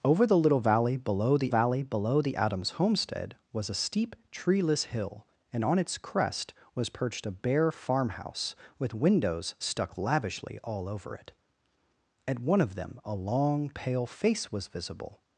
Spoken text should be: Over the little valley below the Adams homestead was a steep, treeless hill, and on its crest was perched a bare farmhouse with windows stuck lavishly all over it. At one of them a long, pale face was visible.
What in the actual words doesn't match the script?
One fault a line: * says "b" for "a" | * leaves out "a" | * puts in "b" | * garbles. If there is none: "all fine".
* puts in "valley below the"